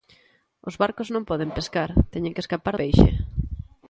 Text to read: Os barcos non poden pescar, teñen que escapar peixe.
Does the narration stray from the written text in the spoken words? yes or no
no